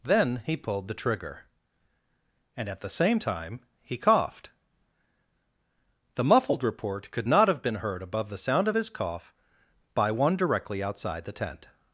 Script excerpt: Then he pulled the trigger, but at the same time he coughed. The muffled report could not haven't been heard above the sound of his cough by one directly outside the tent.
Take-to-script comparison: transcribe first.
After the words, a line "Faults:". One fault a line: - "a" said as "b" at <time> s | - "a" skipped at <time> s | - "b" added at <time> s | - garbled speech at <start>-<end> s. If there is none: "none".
Then he pulled the trigger, and at the same time he coughed. The muffled report could not have been heard above the sound of his cough by one directly outside the tent.
Faults:
- "but" said as "and" at 2.6 s
- "haven't" said as "have" at 7.5 s